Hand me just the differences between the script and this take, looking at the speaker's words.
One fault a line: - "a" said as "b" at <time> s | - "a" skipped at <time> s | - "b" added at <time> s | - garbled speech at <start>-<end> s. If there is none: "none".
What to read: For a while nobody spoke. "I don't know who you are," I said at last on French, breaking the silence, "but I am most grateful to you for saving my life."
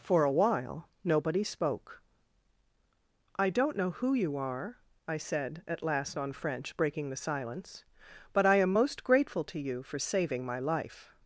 none